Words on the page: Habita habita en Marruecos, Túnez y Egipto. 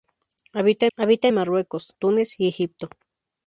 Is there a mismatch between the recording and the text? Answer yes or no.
no